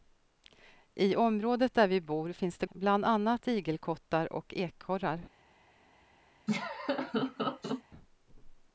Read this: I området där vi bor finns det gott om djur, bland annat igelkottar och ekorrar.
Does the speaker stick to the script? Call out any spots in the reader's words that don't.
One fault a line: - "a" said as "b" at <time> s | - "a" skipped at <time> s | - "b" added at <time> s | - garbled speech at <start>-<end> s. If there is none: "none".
- "gott om djur" skipped at 2.6 s